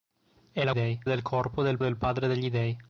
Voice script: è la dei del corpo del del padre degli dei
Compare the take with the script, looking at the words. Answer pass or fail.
pass